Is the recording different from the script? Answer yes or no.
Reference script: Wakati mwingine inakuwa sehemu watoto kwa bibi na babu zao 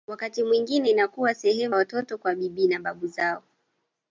no